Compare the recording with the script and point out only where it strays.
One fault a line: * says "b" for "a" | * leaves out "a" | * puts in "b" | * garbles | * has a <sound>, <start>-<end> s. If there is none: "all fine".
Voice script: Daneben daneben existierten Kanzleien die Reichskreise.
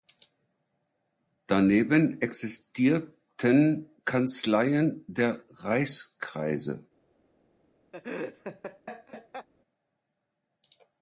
* leaves out "daneben"
* says "der" for "die"
* has a laugh, 7.9-9.5 s